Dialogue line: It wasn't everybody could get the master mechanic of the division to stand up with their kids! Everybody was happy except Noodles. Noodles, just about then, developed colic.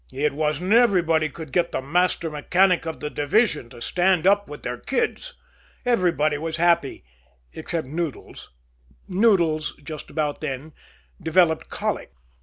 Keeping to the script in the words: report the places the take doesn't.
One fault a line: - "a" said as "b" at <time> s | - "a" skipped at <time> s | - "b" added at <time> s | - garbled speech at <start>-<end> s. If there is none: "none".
none